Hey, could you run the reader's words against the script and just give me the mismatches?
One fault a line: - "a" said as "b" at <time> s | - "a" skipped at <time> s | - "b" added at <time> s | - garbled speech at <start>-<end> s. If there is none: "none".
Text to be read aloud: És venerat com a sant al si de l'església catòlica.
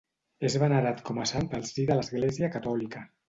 none